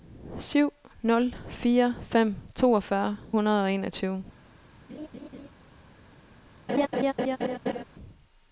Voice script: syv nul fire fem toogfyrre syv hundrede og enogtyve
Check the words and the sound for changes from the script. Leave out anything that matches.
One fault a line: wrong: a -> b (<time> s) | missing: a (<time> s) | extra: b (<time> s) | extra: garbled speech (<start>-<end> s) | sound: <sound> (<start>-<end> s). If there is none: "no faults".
missing: syv (3.2 s)
sound: laugh (4.9-5.5 s)
sound: laugh (6.7-7.8 s)